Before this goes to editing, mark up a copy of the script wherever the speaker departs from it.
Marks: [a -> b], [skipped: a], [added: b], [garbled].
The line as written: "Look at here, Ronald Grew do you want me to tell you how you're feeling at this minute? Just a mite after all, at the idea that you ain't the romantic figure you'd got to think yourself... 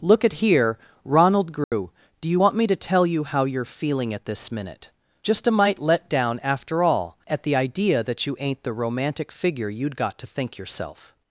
"Look at here, Ronald Grew do you want me to tell you how you're feeling at this minute? Just a mite [added: let down] after all, at the idea that you ain't the romantic figure you'd got to think yourself...